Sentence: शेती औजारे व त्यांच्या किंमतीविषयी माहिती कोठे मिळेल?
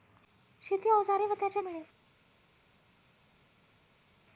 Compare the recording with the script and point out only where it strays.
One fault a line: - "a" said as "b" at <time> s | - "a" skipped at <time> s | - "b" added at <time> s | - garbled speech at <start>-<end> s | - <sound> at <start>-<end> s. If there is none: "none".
- "किंमतीविषयी माहिती कोठे" skipped at 1.6 s